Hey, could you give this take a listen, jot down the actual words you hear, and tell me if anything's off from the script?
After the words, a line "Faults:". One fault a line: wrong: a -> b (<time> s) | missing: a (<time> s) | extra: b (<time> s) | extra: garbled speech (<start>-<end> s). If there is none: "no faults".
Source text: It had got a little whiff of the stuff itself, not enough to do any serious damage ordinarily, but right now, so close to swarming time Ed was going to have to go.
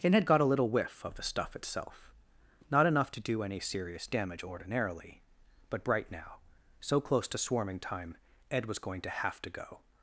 It had got a little whiff of the stuff itself, not enough to do any serious damage ordinarily, but bright now, so close to swarming time Ed was going to have to go.
Faults:
wrong: right -> bright (5.8 s)